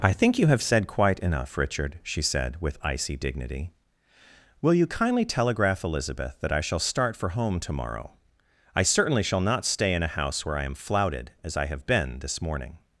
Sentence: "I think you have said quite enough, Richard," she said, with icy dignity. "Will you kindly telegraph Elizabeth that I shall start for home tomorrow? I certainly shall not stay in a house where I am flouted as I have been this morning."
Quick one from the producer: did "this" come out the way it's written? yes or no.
yes